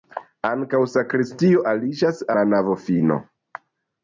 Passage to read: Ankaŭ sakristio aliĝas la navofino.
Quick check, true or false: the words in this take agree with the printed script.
true